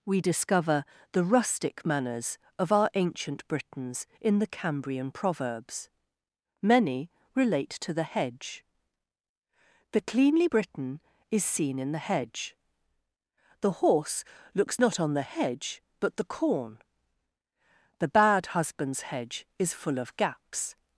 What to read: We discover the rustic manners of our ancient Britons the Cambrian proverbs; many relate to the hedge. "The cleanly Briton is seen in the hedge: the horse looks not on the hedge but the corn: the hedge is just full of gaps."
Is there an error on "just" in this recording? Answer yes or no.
yes